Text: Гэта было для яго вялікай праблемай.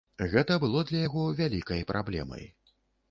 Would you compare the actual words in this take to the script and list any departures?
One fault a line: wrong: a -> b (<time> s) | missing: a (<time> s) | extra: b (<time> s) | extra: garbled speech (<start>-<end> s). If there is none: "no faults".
no faults